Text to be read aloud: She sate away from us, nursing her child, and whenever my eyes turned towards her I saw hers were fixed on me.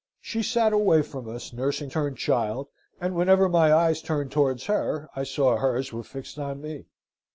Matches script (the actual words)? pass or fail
fail